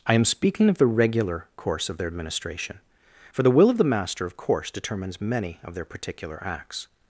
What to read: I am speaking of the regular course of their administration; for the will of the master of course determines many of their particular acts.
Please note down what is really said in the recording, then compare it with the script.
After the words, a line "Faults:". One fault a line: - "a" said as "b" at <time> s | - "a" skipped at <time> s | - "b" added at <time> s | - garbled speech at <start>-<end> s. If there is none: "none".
I am speaking of the regular course of their administration; for the will of the master of course determines many of their particular acts.
Faults:
none